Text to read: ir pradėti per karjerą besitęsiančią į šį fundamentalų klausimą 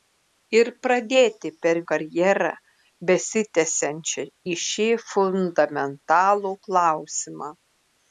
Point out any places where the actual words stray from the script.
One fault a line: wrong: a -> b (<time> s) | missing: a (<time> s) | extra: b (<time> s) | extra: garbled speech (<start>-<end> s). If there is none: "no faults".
no faults